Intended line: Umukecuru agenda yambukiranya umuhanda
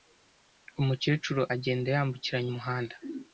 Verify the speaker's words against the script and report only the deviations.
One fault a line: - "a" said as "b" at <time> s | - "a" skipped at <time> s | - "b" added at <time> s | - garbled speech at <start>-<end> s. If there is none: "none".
none